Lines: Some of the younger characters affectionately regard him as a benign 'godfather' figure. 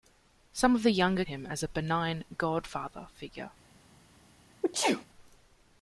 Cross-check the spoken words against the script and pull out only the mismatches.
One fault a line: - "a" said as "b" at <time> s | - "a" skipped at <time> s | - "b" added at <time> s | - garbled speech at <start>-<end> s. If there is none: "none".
- "characters affectionately regard" skipped at 1.2 s